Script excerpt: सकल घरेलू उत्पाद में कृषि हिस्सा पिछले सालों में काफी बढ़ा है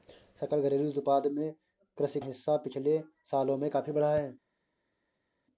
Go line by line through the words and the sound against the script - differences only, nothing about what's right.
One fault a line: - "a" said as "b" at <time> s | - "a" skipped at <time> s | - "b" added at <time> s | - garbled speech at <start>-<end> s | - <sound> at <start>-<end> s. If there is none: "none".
none